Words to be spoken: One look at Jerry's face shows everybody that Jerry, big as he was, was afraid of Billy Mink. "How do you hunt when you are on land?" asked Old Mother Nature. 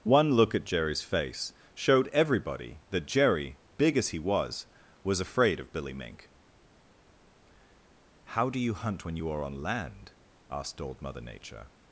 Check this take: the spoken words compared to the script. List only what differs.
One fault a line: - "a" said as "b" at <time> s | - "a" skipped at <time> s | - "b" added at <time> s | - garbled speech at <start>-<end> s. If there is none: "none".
- "shows" said as "showed" at 1.8 s